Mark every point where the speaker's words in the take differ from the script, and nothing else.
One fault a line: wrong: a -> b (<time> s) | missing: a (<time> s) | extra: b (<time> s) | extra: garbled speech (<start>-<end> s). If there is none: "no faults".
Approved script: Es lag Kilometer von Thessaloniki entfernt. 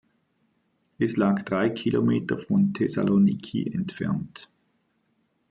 extra: drei (1.4 s)